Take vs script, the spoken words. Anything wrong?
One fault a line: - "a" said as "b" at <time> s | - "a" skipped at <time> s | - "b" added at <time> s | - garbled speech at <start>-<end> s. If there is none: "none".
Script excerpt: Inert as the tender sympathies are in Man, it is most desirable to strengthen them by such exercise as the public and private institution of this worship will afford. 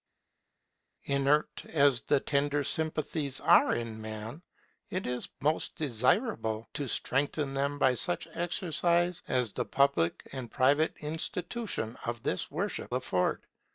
- "will" skipped at 12.9 s